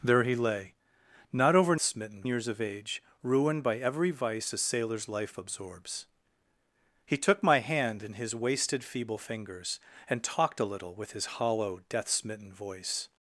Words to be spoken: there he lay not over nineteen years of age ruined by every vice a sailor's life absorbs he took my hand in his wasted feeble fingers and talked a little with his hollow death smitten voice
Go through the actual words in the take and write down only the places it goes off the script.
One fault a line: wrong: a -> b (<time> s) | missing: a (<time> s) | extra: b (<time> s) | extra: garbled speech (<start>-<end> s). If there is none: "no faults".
wrong: nineteen -> smitten (1.8 s)